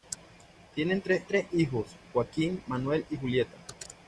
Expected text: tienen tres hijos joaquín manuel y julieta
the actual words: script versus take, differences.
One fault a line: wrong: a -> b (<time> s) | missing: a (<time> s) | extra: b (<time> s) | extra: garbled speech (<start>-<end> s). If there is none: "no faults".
extra: tres (1.3 s)